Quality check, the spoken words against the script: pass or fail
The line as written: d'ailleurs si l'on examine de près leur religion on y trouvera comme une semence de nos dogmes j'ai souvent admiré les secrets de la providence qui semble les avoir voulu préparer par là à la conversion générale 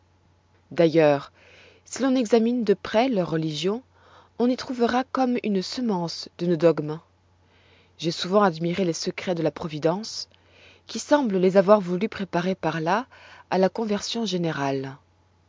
pass